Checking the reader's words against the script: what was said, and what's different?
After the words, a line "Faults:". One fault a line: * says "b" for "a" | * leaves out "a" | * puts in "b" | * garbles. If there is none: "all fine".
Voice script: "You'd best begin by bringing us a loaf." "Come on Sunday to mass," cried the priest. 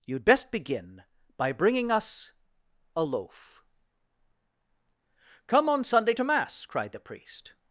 "You'd best begin by bringing us a loaf." "Come on Sunday to mass," cried the priest.
Faults:
all fine